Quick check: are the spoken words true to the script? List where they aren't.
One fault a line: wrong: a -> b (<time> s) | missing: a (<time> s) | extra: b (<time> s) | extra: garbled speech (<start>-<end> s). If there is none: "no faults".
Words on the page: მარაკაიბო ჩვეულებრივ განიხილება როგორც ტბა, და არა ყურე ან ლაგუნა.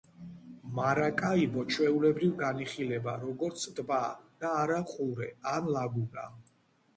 no faults